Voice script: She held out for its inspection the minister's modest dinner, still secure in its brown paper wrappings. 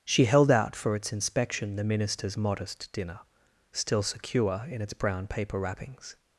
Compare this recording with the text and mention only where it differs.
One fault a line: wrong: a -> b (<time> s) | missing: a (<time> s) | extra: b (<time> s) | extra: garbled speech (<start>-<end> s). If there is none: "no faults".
no faults